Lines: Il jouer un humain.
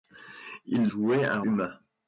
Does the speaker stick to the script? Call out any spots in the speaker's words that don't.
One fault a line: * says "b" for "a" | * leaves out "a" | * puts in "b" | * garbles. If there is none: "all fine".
all fine